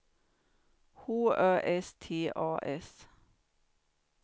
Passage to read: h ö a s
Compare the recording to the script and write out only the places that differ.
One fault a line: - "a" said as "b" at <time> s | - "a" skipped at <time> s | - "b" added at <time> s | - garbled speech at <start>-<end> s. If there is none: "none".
- "s t" added at 1.8 s